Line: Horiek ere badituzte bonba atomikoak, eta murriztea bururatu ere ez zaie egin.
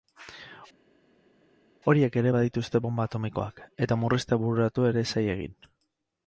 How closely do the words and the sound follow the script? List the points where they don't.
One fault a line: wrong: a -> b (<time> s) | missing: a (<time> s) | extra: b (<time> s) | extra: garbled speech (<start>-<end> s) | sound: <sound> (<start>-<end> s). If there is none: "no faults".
no faults